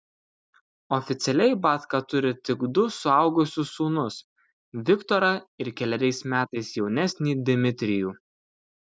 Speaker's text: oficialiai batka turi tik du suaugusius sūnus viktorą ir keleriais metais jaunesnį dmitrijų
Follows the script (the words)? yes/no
yes